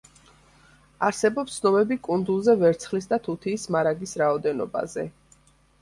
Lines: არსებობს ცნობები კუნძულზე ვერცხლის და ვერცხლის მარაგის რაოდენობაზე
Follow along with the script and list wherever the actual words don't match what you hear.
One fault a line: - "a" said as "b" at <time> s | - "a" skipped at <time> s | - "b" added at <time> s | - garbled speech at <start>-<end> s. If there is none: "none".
- "ვერცხლის" said as "თუთიის" at 3.3 s